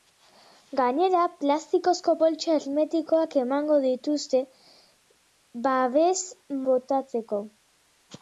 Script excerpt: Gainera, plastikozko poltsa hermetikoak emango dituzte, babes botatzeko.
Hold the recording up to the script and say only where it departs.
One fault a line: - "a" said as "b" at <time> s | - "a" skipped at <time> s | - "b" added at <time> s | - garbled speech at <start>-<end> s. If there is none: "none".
none